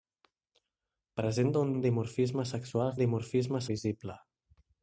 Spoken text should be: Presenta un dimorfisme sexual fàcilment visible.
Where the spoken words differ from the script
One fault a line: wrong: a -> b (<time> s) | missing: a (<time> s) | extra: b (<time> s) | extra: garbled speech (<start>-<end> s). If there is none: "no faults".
extra: un (1.7 s)
wrong: fàcilment -> dimorfisme (3.0 s)